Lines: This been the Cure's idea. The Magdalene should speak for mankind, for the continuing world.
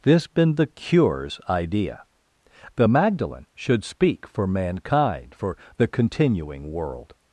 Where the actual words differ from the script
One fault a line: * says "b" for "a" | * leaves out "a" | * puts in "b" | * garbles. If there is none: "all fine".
all fine